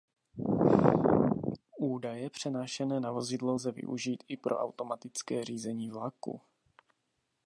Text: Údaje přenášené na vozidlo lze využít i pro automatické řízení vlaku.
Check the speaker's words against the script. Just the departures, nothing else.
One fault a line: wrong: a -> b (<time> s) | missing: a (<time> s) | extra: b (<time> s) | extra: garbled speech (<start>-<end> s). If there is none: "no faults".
no faults